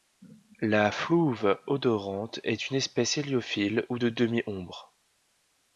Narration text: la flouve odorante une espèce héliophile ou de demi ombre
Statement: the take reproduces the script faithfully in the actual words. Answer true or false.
false